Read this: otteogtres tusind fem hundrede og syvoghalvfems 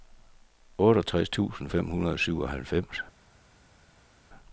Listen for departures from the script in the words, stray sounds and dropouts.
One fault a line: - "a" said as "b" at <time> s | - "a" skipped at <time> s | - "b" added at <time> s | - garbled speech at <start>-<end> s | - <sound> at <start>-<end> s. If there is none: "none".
none